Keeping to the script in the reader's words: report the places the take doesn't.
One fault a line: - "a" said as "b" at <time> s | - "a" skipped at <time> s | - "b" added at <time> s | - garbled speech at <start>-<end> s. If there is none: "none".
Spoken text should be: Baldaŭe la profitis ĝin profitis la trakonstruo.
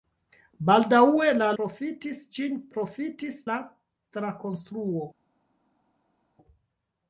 none